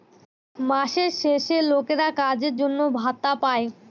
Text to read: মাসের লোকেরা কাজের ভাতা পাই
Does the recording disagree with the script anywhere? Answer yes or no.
yes